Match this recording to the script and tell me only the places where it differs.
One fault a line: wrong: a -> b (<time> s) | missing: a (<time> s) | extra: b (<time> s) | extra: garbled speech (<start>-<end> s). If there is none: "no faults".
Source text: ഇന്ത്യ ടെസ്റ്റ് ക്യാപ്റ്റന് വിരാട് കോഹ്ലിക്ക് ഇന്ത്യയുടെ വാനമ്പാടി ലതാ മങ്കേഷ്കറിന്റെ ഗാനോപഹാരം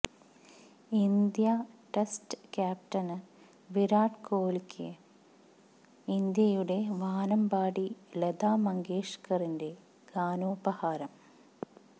no faults